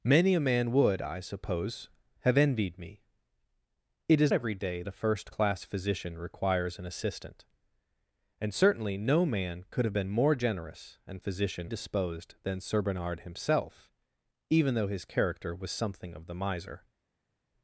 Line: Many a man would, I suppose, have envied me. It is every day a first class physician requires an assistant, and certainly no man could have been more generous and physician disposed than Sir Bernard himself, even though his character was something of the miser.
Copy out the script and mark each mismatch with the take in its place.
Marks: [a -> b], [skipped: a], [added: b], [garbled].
Many a man would, I suppose, have envied me. It is every day a first class physician requires an assistant, and certainly no man could have been more generous and physician disposed than Sir Bernard himself, even though his character was something of the miser.